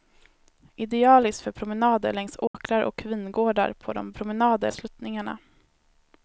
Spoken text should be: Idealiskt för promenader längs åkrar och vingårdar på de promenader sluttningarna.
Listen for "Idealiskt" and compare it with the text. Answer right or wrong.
right